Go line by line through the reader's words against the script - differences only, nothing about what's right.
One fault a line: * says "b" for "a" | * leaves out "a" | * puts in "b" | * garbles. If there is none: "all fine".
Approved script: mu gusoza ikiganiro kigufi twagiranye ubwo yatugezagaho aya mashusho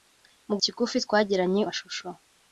* leaves out "gusoza ikiganiro"
* leaves out "ubwo yatugezagaho aya"